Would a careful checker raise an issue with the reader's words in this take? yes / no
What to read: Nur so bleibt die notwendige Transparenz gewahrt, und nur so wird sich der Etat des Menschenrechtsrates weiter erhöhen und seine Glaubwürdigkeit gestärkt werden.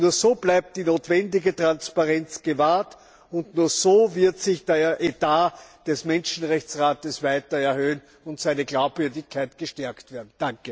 no